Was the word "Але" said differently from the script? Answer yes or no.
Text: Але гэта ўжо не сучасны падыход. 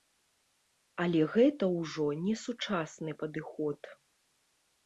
no